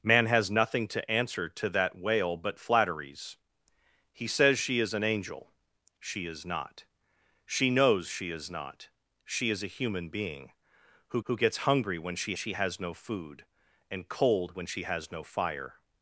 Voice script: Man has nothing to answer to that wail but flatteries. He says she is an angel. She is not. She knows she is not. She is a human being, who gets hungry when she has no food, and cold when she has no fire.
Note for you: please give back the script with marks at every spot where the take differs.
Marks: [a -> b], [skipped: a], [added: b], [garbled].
Man has nothing to answer to that wail but flatteries. He says she is an angel. She is not. She knows she is not. She is a human being, who [added: who] gets hungry when she [added: she] has no food, and cold when she has no fire.